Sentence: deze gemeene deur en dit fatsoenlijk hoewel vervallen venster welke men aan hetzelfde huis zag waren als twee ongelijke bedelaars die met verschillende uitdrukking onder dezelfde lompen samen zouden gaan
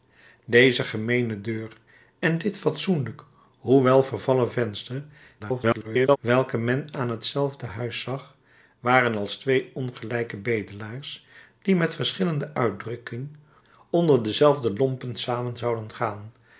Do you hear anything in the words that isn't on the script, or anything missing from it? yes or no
yes